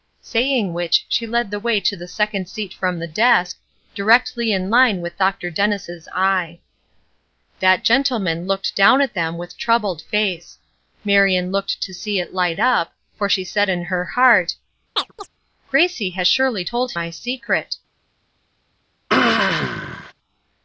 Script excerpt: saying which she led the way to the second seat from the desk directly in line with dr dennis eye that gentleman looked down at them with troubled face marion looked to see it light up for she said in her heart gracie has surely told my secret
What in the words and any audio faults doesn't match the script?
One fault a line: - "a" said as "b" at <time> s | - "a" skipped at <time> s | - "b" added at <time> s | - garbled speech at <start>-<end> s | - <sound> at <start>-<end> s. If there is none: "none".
- chirp at 15.0-15.3 s
- throat clearing at 19.1-20.1 s